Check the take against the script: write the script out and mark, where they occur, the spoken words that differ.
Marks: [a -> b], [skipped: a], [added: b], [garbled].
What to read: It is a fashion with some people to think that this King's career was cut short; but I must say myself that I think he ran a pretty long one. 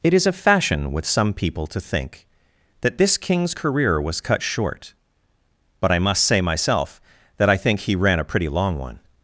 It is a fashion with some people to think that this King's career was cut short; but I must say myself that I think he ran a pretty long one.